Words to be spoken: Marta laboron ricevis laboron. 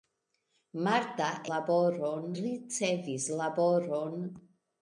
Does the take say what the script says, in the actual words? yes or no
yes